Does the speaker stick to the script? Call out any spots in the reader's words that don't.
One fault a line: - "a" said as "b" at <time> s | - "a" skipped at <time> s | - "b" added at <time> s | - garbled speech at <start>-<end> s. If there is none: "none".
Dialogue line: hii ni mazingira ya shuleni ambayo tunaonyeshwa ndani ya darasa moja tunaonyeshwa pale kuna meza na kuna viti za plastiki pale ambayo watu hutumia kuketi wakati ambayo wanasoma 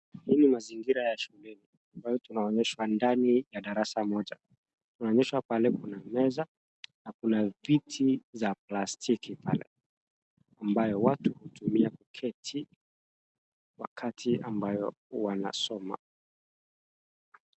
none